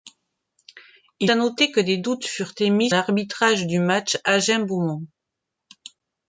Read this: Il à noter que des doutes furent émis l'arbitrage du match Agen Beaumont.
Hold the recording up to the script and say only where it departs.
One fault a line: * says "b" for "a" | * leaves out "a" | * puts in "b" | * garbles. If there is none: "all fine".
all fine